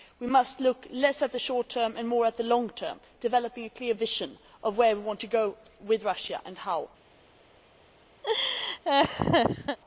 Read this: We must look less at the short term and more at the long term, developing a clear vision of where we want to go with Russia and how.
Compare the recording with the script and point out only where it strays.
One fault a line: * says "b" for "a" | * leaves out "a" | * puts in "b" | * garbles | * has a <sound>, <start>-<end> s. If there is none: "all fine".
* has a laugh, 8.2-9.8 s